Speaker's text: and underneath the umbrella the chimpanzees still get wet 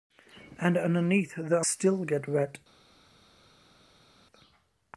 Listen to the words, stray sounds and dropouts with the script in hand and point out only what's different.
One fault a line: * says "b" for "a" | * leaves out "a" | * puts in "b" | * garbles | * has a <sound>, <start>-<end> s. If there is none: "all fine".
* leaves out "umbrella the chimpanzees"